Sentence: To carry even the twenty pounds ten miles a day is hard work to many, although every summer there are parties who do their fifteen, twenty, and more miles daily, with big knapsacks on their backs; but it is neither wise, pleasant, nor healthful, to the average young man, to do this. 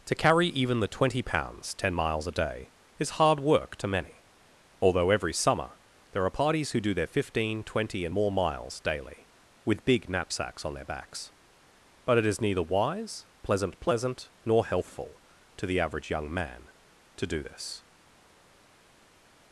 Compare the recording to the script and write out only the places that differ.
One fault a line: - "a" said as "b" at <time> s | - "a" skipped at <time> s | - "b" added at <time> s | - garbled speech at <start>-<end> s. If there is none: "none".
- "pleasant" added at 13.8 s